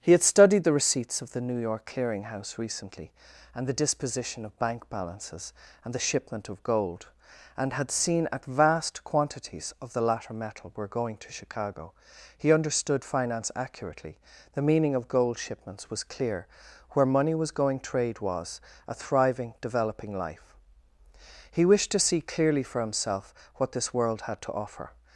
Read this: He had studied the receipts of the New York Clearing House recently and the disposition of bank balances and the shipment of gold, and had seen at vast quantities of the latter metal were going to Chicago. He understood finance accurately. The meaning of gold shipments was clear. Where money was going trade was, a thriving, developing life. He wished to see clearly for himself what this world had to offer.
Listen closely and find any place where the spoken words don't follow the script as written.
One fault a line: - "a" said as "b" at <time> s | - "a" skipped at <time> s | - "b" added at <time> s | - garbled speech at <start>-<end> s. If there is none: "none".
none